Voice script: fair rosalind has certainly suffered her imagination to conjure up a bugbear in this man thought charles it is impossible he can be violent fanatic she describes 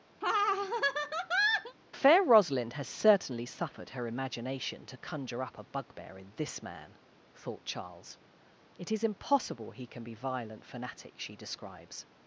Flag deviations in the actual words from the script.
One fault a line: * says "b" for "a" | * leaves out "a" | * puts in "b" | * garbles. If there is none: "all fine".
all fine